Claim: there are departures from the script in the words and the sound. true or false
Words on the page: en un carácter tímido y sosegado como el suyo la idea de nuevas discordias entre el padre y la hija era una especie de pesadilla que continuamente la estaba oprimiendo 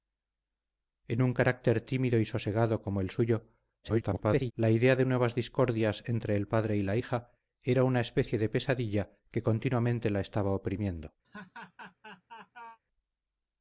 true